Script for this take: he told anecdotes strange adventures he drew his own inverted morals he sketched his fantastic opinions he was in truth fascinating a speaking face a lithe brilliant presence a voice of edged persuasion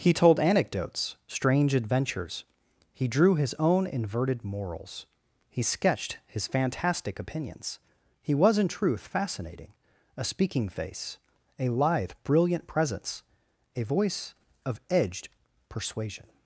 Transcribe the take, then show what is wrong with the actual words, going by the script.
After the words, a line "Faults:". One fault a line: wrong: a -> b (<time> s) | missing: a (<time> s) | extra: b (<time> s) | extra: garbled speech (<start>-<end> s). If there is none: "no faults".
he told anecdotes strange adventures he drew his own inverted morals he sketched his fantastic opinions he was in truth fascinating a speaking face a lithe brilliant presence a voice of edged persuasion
Faults:
no faults